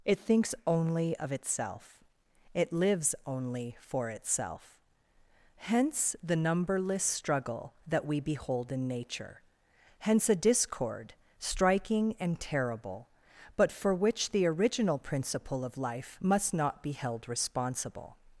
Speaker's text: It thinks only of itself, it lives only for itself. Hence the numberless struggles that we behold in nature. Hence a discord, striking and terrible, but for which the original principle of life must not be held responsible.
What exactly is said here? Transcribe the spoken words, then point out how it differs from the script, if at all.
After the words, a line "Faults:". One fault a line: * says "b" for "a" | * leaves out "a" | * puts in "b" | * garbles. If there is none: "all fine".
It thinks only of itself, it lives only for itself. Hence the numberless struggle that we behold in nature. Hence a discord, striking and terrible, but for which the original principle of life must not be held responsible.
Faults:
* says "struggle" for "struggles"